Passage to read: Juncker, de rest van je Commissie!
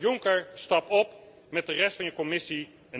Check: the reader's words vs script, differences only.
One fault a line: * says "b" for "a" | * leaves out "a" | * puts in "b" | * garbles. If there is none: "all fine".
* puts in "stap op met"